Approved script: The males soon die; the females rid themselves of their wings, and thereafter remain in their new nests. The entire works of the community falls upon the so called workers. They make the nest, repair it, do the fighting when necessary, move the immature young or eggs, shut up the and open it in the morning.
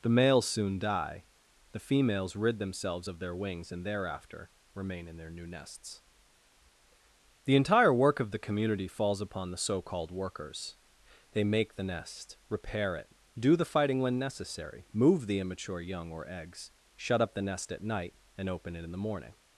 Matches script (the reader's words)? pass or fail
fail